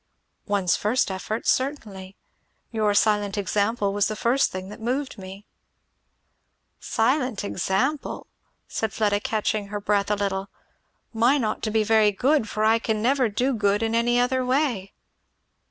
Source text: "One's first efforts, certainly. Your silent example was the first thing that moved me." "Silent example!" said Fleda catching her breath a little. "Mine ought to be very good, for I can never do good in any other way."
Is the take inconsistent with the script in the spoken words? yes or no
no